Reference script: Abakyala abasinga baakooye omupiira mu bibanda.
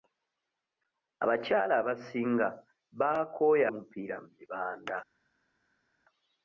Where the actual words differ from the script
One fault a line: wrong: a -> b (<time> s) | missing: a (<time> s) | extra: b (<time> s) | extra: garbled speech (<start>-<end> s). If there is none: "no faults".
no faults